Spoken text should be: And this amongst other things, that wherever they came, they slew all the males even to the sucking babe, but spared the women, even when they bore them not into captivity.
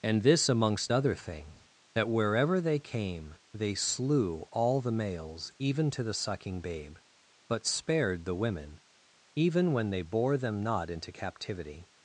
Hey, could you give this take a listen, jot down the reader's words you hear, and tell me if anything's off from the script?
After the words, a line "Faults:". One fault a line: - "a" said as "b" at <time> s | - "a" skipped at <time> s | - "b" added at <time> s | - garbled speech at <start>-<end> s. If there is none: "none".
And this amongst other thing, that wherever they came, they slew all the males even to the sucking babe, but spared the women, even when they bore them not into captivity.
Faults:
- "things" said as "thing" at 1.1 s